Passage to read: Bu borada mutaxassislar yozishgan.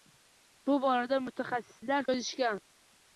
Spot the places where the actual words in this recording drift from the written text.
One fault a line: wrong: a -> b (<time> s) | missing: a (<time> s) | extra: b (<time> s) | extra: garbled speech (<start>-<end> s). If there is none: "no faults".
no faults